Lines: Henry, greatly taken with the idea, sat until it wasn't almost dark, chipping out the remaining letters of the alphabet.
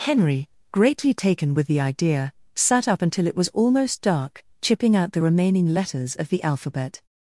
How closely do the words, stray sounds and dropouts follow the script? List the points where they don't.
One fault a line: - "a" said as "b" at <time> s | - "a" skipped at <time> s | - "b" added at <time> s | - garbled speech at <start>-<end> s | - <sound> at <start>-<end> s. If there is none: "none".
- "up" added at 2.9 s
- "wasn't" said as "was" at 3.4 s